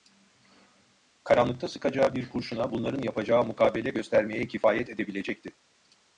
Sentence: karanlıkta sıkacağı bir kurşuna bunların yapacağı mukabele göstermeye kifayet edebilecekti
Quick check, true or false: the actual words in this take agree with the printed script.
true